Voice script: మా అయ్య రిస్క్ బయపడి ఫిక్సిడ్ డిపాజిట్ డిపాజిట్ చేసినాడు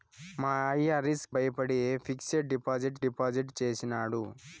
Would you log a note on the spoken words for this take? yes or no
no